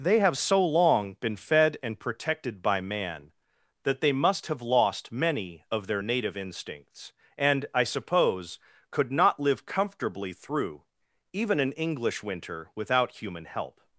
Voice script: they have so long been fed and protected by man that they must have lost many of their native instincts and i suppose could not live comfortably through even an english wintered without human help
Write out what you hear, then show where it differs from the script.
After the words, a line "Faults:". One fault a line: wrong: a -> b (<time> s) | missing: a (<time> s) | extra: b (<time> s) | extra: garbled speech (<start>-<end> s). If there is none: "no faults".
they have so long been fed and protected by man that they must have lost many of their native instincts and i suppose could not live comfortably through even an english winter without human help
Faults:
wrong: wintered -> winter (12.2 s)